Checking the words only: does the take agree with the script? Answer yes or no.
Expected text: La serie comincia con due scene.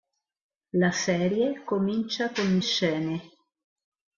no